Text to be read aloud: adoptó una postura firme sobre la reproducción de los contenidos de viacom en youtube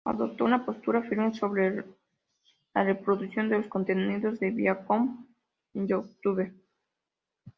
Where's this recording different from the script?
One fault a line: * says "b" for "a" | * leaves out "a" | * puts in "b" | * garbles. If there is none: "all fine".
all fine